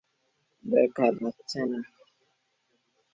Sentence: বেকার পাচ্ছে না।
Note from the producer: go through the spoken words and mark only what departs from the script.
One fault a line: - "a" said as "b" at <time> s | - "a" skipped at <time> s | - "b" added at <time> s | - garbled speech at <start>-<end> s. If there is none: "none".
none